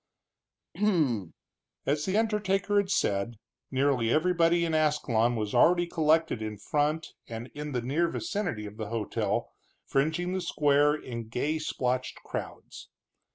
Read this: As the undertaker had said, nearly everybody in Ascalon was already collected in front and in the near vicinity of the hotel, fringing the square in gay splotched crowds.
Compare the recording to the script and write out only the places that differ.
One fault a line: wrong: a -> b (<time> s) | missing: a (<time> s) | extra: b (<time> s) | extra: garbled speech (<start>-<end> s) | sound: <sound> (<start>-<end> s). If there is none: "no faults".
sound: throat clearing (0.7-1.3 s)